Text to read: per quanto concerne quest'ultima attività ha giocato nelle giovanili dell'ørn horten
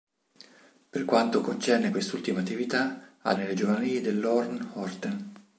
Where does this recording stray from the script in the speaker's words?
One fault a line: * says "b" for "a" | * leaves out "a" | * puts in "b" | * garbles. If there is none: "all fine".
* leaves out "giocato"